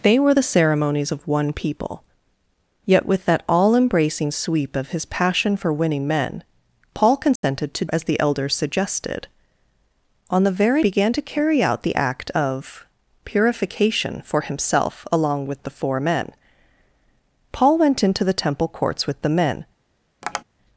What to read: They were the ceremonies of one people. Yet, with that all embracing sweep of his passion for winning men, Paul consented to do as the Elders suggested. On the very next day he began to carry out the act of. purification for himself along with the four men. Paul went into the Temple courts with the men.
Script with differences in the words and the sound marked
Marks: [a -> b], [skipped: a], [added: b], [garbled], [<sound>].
They were the ceremonies of one people. Yet, with that all embracing sweep of his passion for winning men, Paul consented [dropout] to [skipped: do] as the Elders suggested. On the very [skipped: next day he] began to carry out the act of. purification for himself along with the four men. Paul went into the Temple courts with the men. [tap]